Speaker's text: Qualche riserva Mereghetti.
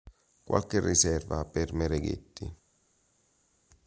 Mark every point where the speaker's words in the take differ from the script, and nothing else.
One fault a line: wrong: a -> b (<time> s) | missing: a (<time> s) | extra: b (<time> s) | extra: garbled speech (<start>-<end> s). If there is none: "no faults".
extra: per (1.4 s)